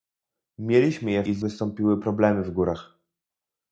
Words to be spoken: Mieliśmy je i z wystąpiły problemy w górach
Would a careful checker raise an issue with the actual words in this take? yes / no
no